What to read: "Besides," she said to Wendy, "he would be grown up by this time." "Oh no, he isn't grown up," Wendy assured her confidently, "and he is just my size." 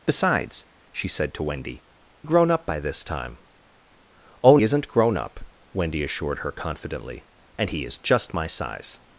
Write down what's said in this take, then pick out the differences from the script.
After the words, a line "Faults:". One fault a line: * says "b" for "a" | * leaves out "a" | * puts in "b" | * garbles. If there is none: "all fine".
"Besides," she said to Wendy, "grown up by this time." "Oh isn't grown up," Wendy assured her confidently, "and he is just my size."
Faults:
* leaves out "he would be"
* leaves out "no he"